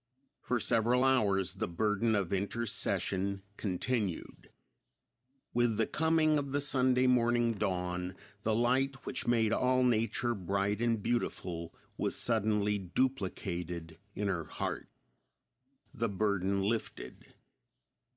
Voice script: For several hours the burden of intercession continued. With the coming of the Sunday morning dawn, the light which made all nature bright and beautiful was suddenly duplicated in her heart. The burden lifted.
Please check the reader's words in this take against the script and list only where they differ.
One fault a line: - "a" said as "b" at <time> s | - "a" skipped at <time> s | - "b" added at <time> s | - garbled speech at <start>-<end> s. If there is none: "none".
none